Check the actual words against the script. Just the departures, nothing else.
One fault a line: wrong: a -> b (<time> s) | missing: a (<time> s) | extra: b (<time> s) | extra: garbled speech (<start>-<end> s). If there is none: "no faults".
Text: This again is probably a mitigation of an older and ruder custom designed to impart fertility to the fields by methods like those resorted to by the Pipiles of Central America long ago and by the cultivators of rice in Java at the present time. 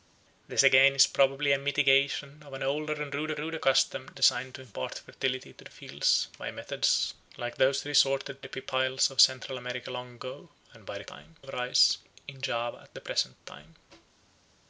extra: ruder (3.4 s)
missing: to by (8.5 s)
wrong: cultivators -> time (11.1 s)